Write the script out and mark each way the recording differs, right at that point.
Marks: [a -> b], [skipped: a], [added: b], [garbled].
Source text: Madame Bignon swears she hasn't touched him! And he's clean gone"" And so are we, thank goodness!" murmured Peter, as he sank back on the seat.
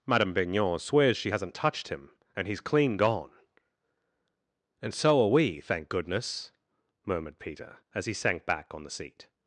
Madame Bignon swears she hasn't touched him! And he's clean gone"" And so are we, thank goodness!" murmured Peter, as he sank back on the seat.